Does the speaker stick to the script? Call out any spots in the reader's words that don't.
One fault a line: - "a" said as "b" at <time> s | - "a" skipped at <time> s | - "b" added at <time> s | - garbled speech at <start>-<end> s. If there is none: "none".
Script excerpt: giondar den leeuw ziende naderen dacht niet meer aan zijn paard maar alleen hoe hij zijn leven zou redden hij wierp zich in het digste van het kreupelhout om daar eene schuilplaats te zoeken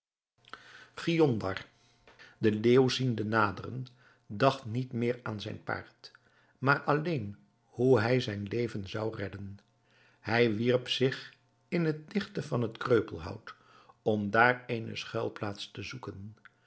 none